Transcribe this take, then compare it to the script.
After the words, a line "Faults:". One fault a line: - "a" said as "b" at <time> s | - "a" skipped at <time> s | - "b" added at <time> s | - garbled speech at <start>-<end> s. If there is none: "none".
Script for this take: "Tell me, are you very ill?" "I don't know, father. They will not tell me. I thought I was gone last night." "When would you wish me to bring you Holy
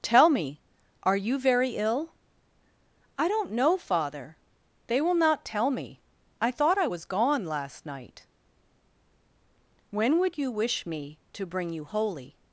"Tell me, are you very ill?" "I don't know, father. They will not tell me. I thought I was gone last night." "When would you wish me to bring you Holy
Faults:
none